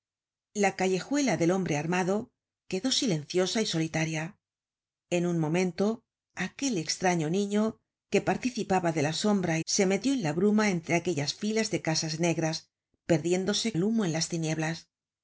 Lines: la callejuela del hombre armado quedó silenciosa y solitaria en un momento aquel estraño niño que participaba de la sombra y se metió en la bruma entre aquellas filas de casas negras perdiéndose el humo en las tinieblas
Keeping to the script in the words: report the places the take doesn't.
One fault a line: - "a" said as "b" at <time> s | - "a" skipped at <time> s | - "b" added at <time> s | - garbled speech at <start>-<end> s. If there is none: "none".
none